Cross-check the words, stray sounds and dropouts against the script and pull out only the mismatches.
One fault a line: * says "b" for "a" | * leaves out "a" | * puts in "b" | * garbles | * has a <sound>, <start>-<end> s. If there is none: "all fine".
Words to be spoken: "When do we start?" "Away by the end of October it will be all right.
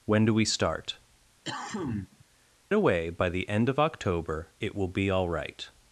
* has a cough, 1.4-2.2 s